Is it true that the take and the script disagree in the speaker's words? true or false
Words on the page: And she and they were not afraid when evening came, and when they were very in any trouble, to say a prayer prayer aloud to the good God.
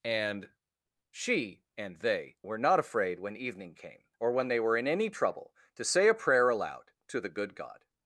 true